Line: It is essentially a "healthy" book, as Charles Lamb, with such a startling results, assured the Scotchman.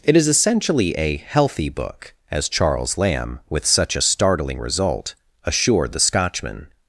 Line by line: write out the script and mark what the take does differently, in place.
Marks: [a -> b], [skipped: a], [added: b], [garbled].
It is essentially a "healthy" book, as Charles Lamb, with such a startling [results, -> result] assured the Scotchman.